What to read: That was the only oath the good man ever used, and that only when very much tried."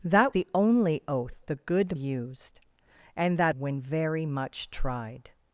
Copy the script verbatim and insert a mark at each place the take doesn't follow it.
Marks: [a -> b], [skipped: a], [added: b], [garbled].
That [skipped: was] the only oath the good [skipped: man ever] used, and that [skipped: only] when very much tried."